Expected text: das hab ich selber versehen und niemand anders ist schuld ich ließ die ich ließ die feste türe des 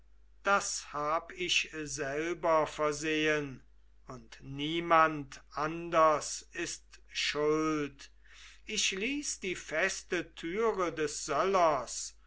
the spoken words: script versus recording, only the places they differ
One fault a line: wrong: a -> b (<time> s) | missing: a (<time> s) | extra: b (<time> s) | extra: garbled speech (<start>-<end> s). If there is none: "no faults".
missing: ich ließ die (9.6 s)